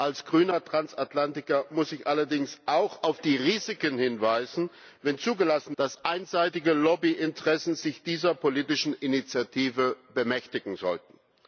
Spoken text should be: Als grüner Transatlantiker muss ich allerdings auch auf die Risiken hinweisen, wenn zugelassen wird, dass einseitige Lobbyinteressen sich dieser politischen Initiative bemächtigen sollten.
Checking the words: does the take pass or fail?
fail